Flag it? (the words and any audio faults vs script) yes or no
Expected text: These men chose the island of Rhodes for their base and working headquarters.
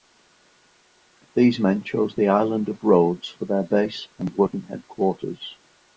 no